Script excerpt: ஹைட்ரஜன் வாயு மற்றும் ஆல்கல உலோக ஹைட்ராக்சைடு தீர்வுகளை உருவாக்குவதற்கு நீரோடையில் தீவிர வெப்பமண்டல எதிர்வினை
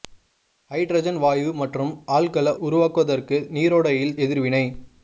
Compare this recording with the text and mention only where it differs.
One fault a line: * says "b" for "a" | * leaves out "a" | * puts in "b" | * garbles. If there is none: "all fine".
* leaves out "உலோக ஹைட்ராக்சைடு தீர்வுகளை"
* leaves out "தீவிர வெப்பமண்டல"